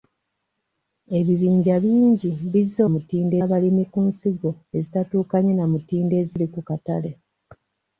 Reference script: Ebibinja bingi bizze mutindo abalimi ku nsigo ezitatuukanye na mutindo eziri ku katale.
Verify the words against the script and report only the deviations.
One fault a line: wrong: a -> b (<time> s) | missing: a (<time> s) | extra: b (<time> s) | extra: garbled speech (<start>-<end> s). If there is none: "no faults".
no faults